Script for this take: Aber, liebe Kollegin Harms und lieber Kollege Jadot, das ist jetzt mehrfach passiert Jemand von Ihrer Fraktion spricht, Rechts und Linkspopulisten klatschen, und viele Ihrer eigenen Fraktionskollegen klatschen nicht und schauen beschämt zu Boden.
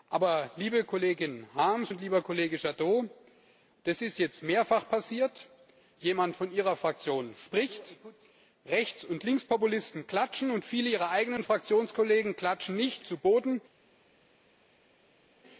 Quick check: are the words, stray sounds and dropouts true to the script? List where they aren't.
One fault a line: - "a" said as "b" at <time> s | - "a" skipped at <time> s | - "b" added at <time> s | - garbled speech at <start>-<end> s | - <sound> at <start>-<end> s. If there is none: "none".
- "und schauen beschämt" skipped at 13.0 s